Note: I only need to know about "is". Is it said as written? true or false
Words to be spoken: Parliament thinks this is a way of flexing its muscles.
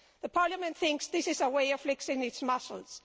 true